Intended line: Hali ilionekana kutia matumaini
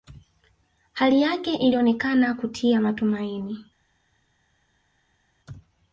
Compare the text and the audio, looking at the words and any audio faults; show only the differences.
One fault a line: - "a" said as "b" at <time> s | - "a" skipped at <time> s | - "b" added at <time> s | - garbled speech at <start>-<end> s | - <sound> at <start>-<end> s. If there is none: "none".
- "yake" added at 1.2 s